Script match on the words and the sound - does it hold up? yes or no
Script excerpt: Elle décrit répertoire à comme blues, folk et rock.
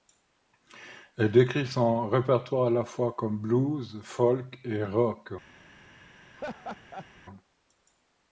no